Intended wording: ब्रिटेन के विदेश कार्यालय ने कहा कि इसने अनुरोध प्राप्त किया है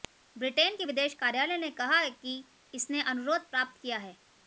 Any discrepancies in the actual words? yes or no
no